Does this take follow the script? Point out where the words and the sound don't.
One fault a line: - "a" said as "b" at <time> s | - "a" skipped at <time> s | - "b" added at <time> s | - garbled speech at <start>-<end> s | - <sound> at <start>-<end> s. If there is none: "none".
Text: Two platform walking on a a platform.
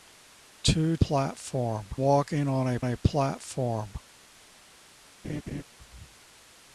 - laugh at 5.2-5.6 s